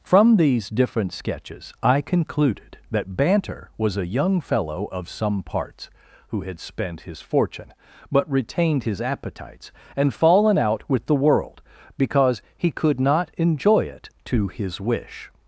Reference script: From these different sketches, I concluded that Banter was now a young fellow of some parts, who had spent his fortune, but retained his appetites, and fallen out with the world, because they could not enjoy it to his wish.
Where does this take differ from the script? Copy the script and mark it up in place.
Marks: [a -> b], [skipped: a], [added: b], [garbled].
From these different sketches, I concluded that Banter was [skipped: now] a young fellow of some parts, who had spent his fortune, but retained his appetites, and fallen out with the world, because [they -> he] could not enjoy it to his wish.